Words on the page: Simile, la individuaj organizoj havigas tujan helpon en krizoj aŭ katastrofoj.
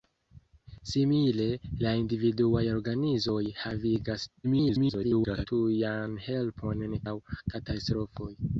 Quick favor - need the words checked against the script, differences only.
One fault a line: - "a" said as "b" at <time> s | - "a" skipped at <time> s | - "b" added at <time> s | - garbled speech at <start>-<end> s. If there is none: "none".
- garbled speech at 4.4-5.5 s
- "krizoj" skipped at 7.0 s